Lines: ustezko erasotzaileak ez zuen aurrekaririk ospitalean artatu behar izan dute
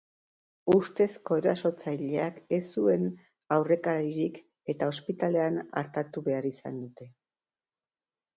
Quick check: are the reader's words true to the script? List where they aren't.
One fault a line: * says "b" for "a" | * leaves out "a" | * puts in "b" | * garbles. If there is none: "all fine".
* puts in "eta"